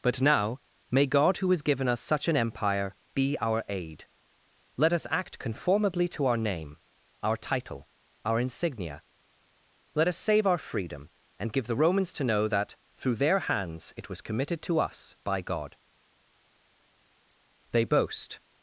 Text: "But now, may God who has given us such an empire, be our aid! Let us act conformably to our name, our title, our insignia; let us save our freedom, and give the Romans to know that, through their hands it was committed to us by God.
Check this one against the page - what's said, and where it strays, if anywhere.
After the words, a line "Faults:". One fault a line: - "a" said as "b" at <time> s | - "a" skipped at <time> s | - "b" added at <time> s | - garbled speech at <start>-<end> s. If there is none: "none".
"But now, may God who has given us such an empire, be our aid! Let us act conformably to our name, our title, our insignia; let us save our freedom, and give the Romans to know that, through their hands it was committed to us by God. They boast
Faults:
- "They boast" added at 17.7 s